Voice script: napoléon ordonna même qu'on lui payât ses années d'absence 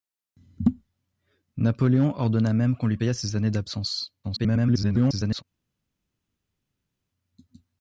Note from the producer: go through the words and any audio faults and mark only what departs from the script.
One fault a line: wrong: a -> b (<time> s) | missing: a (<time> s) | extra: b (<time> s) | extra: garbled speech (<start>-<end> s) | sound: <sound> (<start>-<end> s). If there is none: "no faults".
extra: garbled speech (4.2-5.4 s)